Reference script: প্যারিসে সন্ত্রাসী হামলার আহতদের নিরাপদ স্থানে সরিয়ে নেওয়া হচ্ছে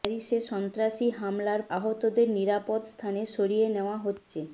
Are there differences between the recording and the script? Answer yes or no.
no